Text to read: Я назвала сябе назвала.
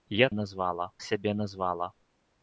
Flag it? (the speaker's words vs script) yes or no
no